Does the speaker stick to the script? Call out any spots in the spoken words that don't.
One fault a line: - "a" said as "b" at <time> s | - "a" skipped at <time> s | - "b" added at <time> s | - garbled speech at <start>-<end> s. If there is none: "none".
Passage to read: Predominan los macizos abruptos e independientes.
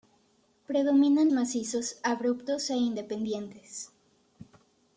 - "los" skipped at 1.3 s